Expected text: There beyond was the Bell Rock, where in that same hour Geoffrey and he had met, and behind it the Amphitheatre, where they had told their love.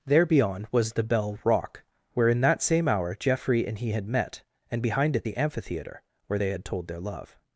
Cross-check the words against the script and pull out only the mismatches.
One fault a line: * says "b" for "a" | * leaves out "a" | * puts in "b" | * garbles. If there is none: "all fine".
all fine